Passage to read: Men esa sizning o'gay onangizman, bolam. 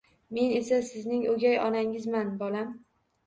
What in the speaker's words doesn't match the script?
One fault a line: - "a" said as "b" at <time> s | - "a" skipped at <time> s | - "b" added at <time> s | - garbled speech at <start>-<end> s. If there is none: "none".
none